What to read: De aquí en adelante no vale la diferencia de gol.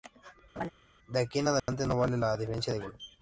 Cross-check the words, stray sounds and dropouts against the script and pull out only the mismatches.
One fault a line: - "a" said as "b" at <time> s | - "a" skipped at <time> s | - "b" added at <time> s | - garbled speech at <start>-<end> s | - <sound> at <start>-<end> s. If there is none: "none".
- laugh at 0.6-0.7 s
- dropout at 1.6-1.7 s